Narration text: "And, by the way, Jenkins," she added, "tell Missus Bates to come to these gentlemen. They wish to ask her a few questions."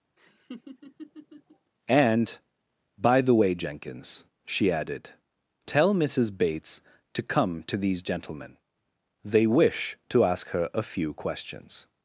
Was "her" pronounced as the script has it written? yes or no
yes